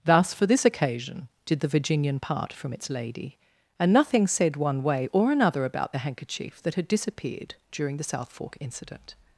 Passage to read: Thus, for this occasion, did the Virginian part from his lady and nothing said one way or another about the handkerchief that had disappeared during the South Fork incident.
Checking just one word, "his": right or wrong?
wrong